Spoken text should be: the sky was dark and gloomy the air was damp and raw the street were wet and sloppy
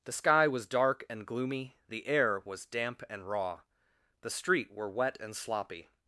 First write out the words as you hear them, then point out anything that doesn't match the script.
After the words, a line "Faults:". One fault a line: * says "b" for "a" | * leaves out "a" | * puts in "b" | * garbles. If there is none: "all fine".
the sky was dark and gloomy the air was damp and raw the street were wet and sloppy
Faults:
all fine